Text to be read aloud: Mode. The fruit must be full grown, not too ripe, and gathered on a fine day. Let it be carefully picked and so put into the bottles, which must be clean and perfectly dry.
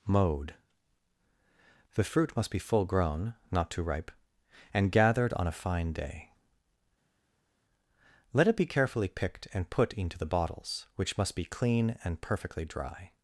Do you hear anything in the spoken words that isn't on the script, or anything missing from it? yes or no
yes